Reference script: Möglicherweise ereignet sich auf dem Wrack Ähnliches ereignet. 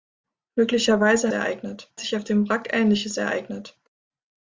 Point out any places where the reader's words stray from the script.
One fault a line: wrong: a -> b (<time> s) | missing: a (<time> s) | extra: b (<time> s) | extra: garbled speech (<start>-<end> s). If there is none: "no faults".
no faults